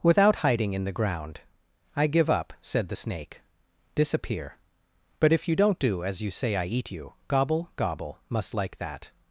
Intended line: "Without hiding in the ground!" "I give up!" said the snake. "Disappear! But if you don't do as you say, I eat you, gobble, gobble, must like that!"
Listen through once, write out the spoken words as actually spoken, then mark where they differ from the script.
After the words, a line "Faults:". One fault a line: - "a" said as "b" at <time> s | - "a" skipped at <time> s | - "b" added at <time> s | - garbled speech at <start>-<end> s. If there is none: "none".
"Without hiding in the ground!" "I give up!" said the snake. "Disappear! But if you don't do as you say, I eat you, gobble, gobble, must like that!"
Faults:
none